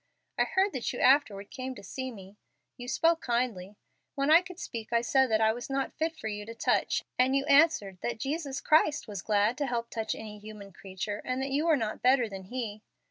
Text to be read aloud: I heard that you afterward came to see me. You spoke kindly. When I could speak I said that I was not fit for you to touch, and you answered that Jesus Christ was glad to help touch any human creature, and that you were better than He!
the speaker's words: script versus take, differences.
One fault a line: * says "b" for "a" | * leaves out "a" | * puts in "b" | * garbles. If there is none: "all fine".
* puts in "not"